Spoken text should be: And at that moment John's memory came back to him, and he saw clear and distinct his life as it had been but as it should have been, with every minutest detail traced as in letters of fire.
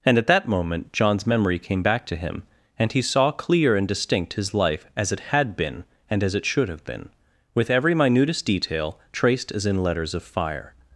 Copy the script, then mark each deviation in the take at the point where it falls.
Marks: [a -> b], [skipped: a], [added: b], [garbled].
And at that moment John's memory came back to him, and he saw clear and distinct his life as it had been [but -> and] as it should have been, with every minutest detail traced as in letters of fire.